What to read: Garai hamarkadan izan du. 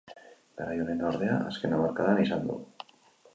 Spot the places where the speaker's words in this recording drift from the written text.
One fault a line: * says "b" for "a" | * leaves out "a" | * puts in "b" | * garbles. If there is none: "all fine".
* puts in "onena ordea azken"